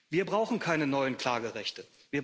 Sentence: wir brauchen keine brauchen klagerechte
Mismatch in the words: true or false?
true